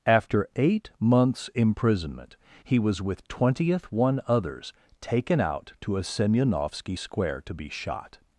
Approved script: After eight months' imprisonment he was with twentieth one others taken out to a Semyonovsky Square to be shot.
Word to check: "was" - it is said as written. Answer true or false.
true